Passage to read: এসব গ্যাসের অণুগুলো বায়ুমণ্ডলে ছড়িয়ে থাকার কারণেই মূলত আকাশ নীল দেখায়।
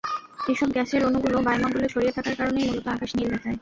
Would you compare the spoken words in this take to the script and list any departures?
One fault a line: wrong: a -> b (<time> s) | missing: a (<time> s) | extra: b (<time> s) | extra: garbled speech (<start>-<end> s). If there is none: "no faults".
no faults